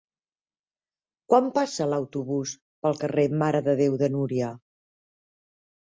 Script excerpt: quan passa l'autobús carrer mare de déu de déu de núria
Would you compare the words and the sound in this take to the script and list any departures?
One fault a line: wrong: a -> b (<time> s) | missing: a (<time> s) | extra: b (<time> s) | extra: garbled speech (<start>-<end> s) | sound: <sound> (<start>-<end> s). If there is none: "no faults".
extra: pel (2.9 s)
missing: déu de (4.1 s)